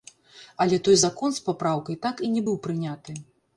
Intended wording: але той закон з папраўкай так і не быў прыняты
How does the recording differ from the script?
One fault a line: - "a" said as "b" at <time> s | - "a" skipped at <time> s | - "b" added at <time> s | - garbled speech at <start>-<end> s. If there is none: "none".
none